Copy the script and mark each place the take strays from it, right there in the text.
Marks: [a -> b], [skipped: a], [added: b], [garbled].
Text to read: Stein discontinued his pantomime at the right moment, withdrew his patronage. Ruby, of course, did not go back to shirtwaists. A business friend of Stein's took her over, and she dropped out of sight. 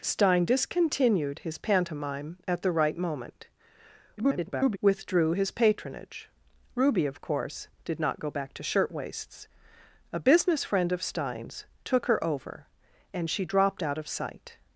Stein discontinued his pantomime at the right moment, [garbled] withdrew his patronage. Ruby, of course, did not go back to shirtwaists. A business friend of Stein's took her over, and she dropped out of sight.